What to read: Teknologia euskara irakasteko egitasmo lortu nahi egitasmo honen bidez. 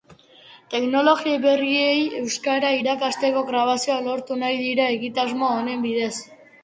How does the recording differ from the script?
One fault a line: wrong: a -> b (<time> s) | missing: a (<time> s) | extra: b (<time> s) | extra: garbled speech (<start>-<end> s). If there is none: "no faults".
extra: berriei (1.4 s)
wrong: egitasmo -> grabazioak (3.5 s)
extra: dira (4.6 s)